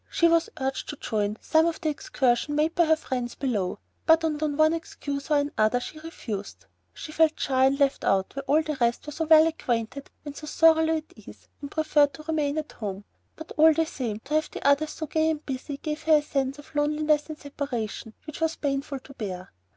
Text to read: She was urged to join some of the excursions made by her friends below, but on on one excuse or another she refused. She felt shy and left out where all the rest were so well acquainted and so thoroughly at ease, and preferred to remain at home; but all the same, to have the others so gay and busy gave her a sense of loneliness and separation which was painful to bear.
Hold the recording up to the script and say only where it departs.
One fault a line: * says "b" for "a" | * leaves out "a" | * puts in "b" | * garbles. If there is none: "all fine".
all fine